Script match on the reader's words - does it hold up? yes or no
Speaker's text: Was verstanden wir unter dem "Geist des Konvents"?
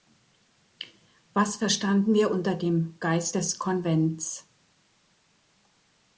yes